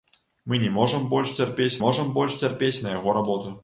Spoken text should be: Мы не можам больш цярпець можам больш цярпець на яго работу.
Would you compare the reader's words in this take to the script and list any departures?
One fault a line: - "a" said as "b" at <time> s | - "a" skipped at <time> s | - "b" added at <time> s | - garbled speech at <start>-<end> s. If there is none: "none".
none